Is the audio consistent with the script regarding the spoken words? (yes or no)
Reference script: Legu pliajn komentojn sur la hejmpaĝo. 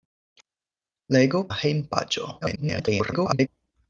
no